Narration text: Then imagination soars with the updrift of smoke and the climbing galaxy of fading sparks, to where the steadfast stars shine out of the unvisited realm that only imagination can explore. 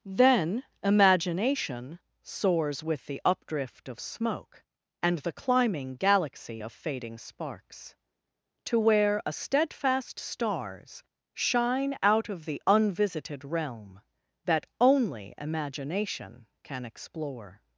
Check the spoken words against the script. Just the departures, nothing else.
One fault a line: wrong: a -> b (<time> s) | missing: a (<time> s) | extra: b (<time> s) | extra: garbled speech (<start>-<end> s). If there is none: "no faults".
wrong: the -> a (9.2 s)